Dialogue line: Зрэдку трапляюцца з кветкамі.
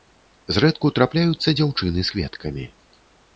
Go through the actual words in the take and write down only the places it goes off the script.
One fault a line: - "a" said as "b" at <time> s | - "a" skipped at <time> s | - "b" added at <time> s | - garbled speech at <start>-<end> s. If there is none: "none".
- "дзяўчыны" added at 1.6 s